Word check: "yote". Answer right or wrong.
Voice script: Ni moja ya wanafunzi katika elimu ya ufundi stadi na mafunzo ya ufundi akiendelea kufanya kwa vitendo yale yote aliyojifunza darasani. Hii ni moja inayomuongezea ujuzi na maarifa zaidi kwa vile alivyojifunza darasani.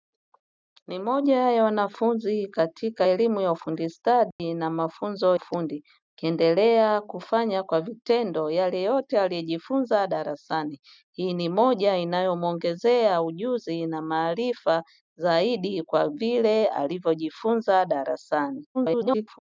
right